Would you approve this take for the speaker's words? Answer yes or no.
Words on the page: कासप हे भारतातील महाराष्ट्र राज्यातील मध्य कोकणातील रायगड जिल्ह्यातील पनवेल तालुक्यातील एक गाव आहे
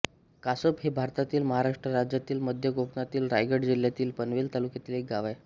yes